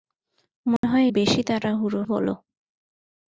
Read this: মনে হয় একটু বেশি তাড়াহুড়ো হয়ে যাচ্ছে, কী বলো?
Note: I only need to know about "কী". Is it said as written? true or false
false